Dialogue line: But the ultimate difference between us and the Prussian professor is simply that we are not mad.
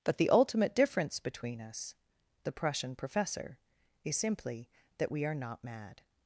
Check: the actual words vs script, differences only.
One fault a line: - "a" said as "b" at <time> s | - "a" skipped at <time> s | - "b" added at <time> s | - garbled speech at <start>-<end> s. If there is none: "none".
- "and" skipped at 1.9 s